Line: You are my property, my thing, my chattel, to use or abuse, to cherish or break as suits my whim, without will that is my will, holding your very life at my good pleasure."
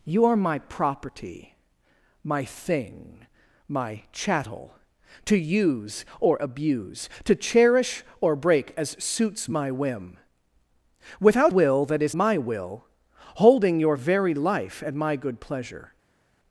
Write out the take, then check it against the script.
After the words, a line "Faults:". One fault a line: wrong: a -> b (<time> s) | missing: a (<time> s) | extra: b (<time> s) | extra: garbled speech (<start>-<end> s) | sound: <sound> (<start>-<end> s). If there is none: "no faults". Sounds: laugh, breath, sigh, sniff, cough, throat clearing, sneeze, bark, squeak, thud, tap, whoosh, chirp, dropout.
You are my property, my thing, my chattel, to use or abuse, to cherish or break as suits my whim, without will that is my will, holding your very life at my good pleasure."
Faults:
no faults